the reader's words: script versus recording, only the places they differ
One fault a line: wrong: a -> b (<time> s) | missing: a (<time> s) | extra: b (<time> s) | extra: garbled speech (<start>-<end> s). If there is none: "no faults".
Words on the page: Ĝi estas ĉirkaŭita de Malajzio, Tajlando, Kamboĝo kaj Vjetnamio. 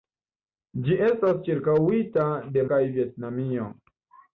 missing: Malajzio Tajlando Kamboĝo (2.6 s)